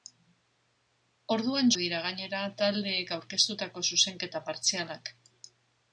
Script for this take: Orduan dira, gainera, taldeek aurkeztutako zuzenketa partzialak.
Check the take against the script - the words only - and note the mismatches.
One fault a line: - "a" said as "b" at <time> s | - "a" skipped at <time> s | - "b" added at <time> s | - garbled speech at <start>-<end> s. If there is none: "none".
none